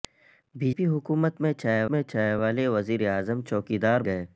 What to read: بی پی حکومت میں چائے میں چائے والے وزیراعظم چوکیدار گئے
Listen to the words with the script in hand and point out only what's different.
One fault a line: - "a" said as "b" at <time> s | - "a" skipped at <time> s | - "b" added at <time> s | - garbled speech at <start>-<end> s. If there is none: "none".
none